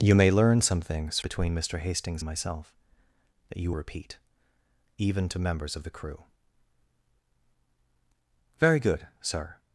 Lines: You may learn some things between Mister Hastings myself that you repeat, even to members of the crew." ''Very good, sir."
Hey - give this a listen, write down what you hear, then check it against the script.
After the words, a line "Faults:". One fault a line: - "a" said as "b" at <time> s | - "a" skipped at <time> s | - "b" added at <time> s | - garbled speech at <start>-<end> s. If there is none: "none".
You may learn some things between Mister Hastings myself that you repeat, even to members of the crew." ''Very good, sir."
Faults:
none